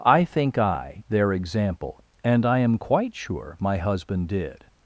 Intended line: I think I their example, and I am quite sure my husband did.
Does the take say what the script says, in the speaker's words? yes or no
yes